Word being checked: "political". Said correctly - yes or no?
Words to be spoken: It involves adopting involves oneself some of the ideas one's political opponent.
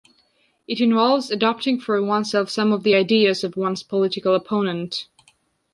yes